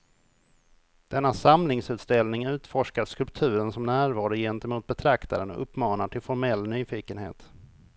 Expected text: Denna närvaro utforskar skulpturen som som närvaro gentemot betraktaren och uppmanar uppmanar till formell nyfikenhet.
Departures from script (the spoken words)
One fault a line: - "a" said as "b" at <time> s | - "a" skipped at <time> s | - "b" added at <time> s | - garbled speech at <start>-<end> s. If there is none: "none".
- "närvaro" said as "samlingsutställning" at 1.3 s
- "som" skipped at 3.8 s
- "uppmanar" skipped at 6.1 s